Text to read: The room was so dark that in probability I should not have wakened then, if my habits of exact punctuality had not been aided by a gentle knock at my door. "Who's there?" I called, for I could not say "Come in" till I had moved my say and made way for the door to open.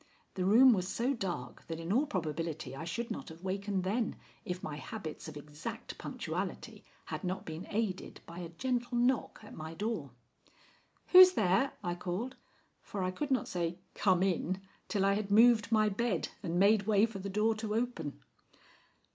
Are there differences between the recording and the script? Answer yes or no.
yes